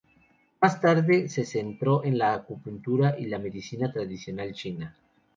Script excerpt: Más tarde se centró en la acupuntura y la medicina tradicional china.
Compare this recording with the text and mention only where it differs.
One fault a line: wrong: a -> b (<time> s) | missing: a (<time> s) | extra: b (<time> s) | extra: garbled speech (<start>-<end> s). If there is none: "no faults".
no faults